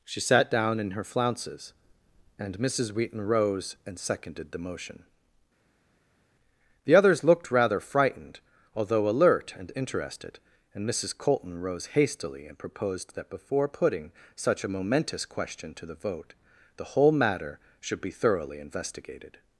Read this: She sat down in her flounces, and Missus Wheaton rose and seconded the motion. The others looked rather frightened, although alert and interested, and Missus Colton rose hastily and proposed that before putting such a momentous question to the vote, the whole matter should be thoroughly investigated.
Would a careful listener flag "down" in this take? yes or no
no